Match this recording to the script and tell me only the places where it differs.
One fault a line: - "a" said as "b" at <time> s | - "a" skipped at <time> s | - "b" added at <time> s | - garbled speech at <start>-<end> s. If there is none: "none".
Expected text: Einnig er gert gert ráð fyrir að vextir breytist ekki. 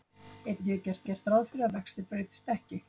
none